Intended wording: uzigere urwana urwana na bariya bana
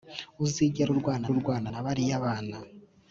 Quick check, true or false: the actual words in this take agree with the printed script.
true